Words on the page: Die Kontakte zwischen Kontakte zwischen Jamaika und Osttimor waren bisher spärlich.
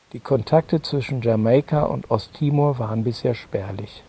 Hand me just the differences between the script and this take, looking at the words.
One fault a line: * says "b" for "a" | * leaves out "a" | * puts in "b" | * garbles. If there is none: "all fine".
* leaves out "Kontakte zwischen"